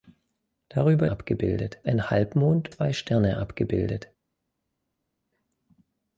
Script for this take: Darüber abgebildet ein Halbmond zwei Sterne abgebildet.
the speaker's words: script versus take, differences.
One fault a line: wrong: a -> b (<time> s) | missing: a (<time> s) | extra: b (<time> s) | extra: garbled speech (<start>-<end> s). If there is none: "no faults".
no faults